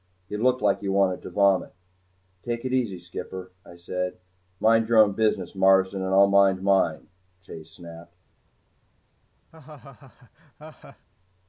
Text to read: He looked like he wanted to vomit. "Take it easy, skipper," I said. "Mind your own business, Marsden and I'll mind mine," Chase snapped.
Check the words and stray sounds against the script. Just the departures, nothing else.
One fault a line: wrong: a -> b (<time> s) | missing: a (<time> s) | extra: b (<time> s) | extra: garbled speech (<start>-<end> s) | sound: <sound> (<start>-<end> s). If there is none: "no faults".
sound: laugh (9.5-11.1 s)